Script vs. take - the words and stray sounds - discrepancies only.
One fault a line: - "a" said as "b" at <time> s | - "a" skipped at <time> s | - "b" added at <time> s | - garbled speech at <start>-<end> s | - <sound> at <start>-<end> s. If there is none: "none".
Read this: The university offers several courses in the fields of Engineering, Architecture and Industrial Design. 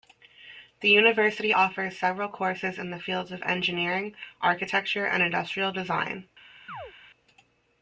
- chirp at 6.7-6.9 s